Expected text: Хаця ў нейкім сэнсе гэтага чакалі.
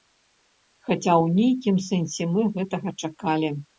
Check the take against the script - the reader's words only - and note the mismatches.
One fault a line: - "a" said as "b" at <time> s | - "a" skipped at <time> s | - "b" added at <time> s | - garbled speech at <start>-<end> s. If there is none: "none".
- "мы" added at 2.4 s